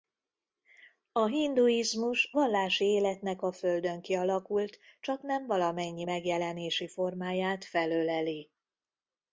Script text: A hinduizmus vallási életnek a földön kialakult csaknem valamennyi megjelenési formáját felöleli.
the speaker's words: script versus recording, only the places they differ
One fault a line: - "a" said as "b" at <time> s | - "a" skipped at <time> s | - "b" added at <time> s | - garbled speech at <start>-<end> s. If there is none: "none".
none